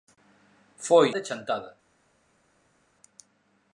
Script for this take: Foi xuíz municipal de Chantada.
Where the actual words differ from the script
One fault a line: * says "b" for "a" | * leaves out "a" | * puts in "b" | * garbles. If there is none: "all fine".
* leaves out "xuíz municipal"